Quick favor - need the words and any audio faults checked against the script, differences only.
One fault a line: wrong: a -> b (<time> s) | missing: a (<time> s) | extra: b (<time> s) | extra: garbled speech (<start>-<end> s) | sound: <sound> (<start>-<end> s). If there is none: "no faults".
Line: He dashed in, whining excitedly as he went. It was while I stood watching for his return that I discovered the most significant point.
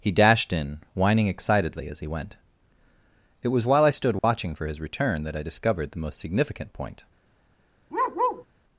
sound: dropout (4.2-4.2 s)
sound: bark (7.9-8.4 s)